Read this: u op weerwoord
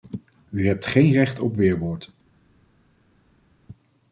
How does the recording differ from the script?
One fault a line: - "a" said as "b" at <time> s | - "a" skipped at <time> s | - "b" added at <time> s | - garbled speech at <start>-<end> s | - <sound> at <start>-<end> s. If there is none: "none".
- "hebt geen recht" added at 0.7 s